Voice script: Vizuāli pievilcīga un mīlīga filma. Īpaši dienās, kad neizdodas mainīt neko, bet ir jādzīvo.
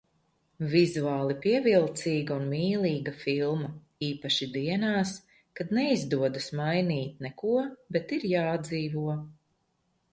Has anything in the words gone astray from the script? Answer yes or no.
no